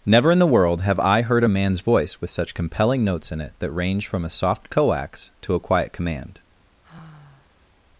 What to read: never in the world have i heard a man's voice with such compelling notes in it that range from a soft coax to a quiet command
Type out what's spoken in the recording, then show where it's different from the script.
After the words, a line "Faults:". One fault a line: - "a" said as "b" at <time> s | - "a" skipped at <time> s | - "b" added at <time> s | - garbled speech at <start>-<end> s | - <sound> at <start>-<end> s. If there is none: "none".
never in the world have i heard a man's voice with such compelling notes in it that range from a soft coax to a quiet command
Faults:
- sigh at 6.8-7.7 s